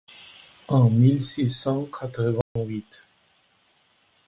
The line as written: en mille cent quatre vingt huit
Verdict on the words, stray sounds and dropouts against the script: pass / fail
fail